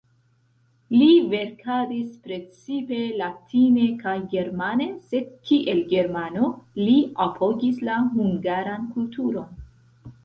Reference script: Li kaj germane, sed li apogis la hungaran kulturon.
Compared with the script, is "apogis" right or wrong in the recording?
right